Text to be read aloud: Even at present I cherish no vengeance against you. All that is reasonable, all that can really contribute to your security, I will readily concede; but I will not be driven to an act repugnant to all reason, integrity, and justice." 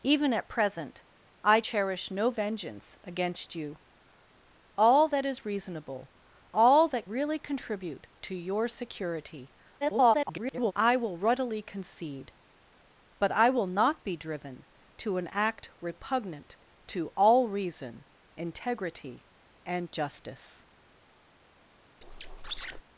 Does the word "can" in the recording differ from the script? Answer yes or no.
yes